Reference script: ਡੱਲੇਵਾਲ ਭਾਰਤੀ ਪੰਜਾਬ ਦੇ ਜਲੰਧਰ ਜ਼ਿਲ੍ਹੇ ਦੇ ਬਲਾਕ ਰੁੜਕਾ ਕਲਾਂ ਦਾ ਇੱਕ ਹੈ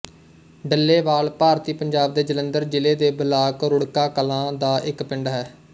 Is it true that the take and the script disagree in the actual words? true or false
true